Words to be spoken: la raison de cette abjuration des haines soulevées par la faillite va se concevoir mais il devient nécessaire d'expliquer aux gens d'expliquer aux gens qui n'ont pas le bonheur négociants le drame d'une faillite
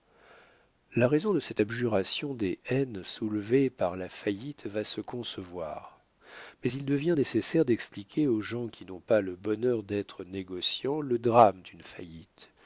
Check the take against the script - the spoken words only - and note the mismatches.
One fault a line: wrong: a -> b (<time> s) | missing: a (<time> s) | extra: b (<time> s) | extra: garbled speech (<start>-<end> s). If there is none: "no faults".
missing: d'expliquer aux gens (8.7 s)
extra: d'être (9.8 s)